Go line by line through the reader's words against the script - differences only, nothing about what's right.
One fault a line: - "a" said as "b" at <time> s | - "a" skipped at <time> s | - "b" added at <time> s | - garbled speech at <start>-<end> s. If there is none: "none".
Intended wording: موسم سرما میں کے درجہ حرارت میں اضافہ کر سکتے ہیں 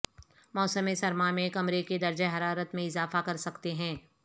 - "کمرے" added at 1.5 s